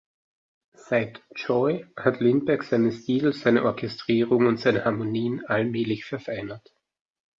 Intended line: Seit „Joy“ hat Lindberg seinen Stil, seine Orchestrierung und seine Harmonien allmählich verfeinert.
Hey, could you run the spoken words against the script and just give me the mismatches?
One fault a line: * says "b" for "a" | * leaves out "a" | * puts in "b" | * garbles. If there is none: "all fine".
all fine